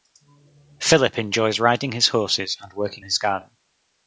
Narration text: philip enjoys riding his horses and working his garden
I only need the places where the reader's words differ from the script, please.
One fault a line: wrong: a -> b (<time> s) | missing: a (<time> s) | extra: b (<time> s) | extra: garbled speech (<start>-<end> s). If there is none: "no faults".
no faults